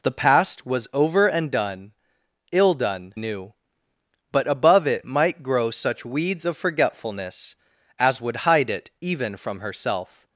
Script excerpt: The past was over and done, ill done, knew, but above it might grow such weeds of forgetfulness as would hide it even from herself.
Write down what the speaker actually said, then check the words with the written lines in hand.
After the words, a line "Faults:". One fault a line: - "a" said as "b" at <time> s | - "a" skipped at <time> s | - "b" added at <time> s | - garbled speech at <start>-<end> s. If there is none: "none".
The past was over and done, ill done, knew, but above it might grow such weeds of forgetfulness as would hide it even from herself.
Faults:
none